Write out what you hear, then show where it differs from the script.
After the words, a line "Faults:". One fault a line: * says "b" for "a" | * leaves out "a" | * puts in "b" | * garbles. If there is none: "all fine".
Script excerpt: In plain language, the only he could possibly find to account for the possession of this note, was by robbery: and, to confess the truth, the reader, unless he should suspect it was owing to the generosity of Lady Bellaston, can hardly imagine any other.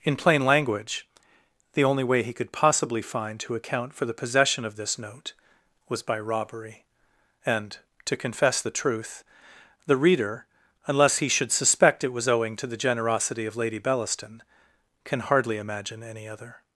In plain language, the only way he could possibly find to account for the possession of this note, was by robbery: and, to confess the truth, the reader, unless he should suspect it was owing to the generosity of Lady Bellaston, can hardly imagine any other.
Faults:
* puts in "way"